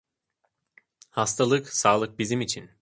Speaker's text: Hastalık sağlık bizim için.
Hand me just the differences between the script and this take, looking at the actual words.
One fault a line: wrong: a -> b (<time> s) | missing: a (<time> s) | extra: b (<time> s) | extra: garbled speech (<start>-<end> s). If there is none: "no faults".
no faults